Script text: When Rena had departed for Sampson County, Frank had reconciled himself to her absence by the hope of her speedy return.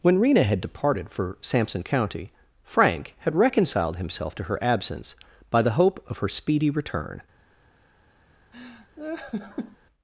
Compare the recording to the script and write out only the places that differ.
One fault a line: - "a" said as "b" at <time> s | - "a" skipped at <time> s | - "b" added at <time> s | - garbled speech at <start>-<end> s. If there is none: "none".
none